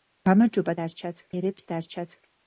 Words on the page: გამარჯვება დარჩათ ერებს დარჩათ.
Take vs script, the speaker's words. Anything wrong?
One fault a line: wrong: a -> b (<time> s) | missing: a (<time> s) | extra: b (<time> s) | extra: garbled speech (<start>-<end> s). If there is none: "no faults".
no faults